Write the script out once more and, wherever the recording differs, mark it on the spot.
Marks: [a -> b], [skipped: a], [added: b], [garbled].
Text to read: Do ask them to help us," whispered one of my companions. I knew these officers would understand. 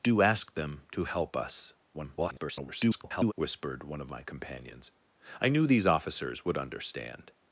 Do ask them to help us," [garbled] whispered one of my companions. I knew these officers would understand.